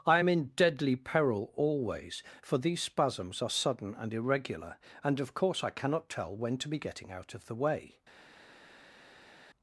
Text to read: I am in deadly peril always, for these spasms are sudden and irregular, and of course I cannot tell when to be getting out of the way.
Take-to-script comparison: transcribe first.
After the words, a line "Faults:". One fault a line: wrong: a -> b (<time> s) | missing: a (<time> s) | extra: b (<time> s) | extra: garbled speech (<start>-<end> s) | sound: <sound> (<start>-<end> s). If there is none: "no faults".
I am in deadly peril always, for these spasms are sudden and irregular, and of course I cannot tell when to be getting out of the way.
Faults:
no faults